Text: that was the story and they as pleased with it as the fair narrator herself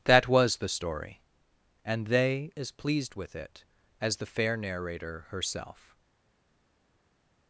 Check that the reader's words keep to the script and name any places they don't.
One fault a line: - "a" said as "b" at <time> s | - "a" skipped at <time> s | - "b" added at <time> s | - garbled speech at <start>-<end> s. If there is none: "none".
none